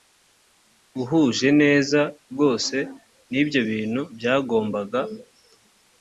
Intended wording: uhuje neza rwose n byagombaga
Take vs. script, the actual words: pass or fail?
fail